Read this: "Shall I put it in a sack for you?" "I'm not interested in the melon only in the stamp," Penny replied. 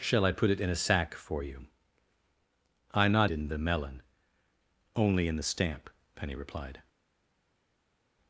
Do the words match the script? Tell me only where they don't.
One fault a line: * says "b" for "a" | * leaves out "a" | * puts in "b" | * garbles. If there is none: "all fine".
* leaves out "interested"